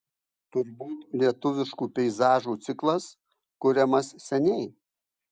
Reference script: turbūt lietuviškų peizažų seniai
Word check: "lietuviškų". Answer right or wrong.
right